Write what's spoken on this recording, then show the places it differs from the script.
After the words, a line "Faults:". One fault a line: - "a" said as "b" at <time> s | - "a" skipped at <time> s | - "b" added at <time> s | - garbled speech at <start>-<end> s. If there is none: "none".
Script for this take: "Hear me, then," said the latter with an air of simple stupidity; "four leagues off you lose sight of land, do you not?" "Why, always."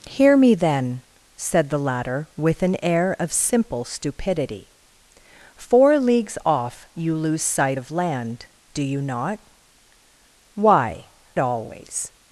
"Hear me, then," said the latter with an air of simple stupidity; "four leagues off you lose sight of land, do you not?" "Why, always."
Faults:
none